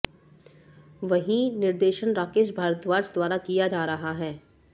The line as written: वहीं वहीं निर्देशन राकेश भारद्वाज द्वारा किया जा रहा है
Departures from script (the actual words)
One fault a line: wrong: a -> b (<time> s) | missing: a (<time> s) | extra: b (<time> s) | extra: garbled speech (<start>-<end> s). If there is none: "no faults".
missing: वहीं (1.4 s)